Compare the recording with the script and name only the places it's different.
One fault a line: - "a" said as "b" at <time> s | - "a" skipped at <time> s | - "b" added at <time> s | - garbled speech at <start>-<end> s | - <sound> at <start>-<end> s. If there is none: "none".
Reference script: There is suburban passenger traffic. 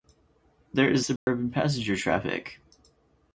- dropout at 1.2-1.3 s